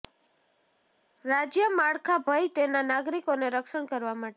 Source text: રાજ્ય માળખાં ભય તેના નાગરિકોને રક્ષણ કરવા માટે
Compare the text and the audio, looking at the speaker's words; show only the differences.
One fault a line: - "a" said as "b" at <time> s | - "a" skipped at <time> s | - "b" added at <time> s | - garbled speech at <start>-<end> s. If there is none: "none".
none